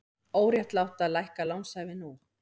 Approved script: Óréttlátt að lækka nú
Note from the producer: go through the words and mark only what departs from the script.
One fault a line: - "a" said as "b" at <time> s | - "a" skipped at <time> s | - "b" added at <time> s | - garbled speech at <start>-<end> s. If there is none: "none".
- "lánshæfi" added at 1.5 s